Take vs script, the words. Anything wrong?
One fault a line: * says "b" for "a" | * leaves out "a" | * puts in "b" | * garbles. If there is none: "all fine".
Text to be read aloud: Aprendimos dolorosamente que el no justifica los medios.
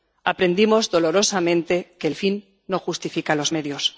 * puts in "fin"